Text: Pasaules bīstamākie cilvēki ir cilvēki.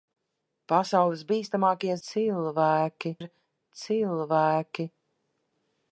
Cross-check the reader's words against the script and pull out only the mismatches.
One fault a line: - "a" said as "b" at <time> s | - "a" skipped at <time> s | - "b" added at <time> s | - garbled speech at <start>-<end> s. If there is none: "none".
none